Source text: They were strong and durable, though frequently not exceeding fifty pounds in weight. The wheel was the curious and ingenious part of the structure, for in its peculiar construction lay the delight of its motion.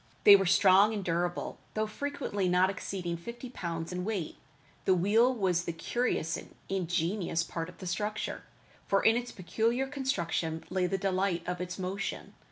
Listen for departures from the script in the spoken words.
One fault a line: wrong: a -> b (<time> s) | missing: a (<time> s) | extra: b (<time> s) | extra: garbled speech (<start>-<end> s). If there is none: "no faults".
no faults